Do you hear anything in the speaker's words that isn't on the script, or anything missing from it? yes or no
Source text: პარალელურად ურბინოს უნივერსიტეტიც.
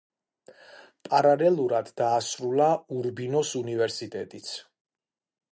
yes